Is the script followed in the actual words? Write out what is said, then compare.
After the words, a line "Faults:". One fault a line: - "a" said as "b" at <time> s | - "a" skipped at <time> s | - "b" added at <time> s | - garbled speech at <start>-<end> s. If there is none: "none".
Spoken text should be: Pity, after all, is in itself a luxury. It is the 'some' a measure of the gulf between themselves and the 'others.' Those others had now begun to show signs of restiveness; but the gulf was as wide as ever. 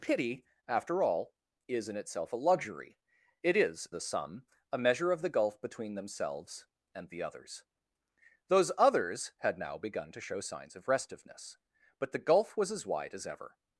Pity, after all, is in itself a luxury. It is the 'some' a measure of the gulf between themselves and the 'others.' Those others had now begun to show signs of restiveness; but the gulf was as wide as ever.
Faults:
none